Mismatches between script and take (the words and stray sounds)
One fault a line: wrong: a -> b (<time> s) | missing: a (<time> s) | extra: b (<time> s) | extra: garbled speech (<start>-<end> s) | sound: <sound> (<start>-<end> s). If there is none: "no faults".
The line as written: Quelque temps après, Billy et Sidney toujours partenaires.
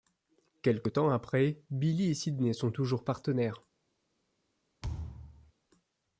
extra: sont (2.5 s)
sound: thud (4.8-5.5 s)